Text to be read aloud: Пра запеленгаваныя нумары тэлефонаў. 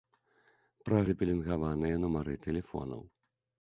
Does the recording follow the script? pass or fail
pass